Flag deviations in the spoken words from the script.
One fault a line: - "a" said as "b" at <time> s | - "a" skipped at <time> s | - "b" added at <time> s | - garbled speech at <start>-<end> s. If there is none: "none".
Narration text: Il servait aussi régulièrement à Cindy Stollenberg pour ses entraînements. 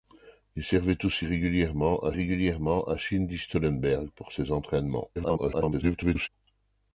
- "régulièrement à" added at 2.1 s
- garbled speech at 5.2-6.3 s